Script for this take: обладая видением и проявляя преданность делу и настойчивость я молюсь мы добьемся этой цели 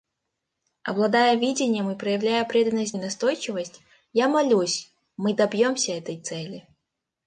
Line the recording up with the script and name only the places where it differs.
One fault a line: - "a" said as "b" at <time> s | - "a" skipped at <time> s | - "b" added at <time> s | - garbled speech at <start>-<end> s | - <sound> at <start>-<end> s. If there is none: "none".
- "делу" skipped at 3.0 s